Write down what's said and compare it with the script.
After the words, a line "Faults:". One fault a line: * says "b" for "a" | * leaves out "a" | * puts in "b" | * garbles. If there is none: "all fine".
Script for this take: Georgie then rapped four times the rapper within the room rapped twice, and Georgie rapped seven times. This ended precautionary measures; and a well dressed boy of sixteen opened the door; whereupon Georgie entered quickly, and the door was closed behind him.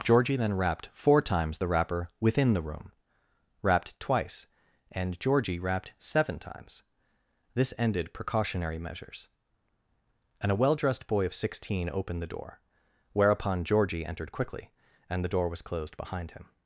Georgie then rapped four times the rapper within the room rapped twice, and Georgie rapped seven times. This ended precautionary measures; and a well dressed boy of sixteen opened the door; whereupon Georgie entered quickly, and the door was closed behind him.
Faults:
all fine